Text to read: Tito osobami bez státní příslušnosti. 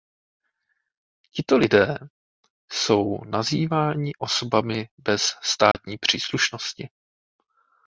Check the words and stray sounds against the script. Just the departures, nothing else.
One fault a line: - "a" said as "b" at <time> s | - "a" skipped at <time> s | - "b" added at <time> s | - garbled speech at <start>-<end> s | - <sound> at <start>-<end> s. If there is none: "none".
- "lidé jsou nazýváni" added at 1.6 s
- dropout at 5.7-5.8 s